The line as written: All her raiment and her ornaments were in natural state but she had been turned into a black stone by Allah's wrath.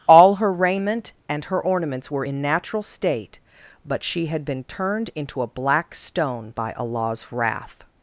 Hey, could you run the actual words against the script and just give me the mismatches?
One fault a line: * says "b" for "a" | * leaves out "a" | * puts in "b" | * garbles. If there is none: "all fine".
all fine